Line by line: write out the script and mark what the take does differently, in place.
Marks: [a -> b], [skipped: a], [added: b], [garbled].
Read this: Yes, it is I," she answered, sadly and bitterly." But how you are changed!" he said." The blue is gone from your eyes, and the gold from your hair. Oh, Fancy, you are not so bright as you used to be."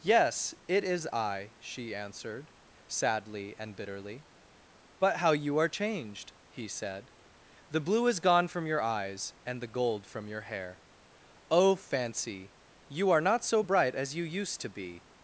Yes, it is I," she answered, sadly and bitterly." But how you are changed!" he said." The blue is gone from your eyes, and the gold from your hair. Oh, Fancy, you are not so bright as you used to be."